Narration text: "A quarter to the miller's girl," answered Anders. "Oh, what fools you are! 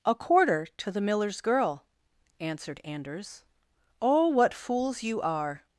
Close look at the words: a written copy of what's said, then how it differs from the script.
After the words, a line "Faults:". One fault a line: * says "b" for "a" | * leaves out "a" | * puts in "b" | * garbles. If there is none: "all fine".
"A quarter to the miller's girl," answered Anders. "Oh, what fools you are!
Faults:
all fine